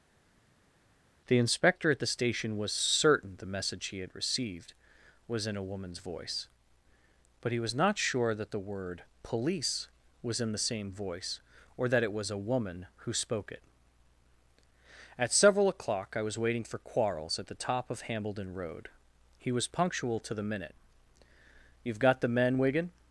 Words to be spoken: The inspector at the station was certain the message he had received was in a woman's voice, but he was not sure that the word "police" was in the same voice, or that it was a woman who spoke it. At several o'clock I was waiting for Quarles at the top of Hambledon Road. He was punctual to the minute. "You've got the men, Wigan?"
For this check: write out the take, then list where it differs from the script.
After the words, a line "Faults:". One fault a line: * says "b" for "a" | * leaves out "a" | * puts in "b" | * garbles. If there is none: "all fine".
The inspector at the station was certain the message he had received was in a woman's voice, but he was not sure that the word "police" was in the same voice, or that it was a woman who spoke it. At several o'clock I was waiting for Quarles at the top of Hambledon Road. He was punctual to the minute. "You've got the men, Wigan?"
Faults:
all fine